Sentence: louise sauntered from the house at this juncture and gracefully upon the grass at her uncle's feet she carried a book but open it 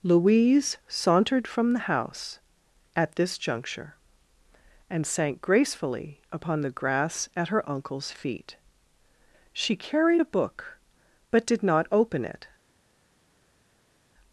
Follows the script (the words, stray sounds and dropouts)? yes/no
no